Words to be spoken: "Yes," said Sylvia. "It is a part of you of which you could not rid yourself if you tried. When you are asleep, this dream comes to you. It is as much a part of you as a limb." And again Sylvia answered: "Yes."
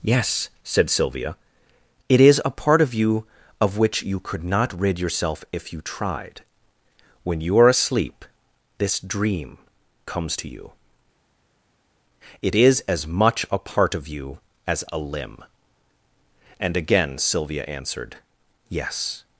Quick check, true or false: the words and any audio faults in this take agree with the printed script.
true